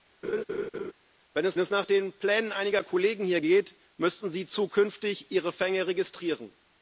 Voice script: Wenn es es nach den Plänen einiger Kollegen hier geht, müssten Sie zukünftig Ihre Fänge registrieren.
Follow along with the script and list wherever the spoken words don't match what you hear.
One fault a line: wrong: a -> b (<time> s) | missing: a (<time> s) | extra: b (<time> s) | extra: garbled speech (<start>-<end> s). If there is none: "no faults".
no faults